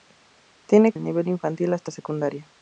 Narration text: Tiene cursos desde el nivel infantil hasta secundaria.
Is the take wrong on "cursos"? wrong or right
wrong